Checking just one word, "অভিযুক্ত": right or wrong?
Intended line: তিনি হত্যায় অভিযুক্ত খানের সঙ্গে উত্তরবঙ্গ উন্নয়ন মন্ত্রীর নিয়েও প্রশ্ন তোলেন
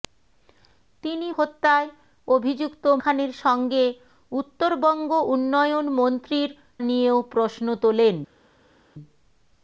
right